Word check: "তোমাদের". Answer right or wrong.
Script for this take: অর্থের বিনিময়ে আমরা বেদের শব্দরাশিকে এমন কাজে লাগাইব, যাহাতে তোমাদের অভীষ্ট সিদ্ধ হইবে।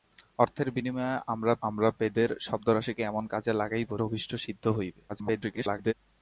wrong